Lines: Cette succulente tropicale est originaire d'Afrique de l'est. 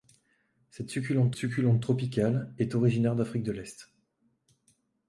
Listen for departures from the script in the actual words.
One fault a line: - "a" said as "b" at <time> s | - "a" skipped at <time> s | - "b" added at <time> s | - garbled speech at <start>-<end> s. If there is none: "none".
- "succulente" added at 1.4 s